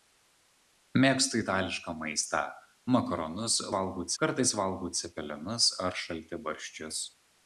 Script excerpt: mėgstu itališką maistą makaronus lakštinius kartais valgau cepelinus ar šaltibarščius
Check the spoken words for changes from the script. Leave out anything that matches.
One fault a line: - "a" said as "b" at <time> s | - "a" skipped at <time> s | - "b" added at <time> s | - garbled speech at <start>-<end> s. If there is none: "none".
- "lakštinius" said as "valgau" at 3.8 s